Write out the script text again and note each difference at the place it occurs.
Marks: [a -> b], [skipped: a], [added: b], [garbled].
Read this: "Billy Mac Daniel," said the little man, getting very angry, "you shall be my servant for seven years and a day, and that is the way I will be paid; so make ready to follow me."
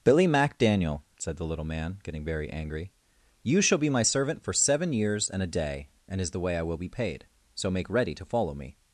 "Billy Mac Daniel," said the little man, getting very angry, "you shall be my servant for seven years and a day, and [skipped: that] is the way I will be paid; so make ready to follow me."